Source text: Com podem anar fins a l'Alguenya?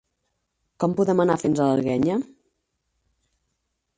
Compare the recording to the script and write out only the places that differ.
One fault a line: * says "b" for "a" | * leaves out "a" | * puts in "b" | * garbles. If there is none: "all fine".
all fine